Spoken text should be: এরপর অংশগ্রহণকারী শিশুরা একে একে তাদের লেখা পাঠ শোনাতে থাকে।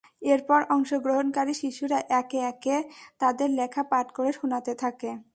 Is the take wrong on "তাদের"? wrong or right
right